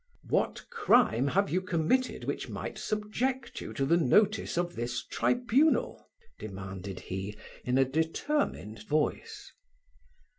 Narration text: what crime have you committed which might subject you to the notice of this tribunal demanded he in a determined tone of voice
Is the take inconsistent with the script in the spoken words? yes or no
yes